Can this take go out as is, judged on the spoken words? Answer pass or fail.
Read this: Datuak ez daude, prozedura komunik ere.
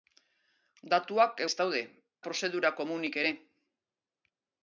pass